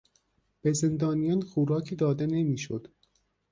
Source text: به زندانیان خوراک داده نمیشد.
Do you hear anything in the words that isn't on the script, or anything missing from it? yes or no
no